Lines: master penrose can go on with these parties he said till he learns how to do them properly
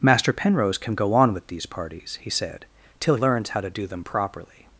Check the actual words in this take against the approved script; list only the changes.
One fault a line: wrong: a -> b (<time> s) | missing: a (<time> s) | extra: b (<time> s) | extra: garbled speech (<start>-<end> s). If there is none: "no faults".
missing: he (3.2 s)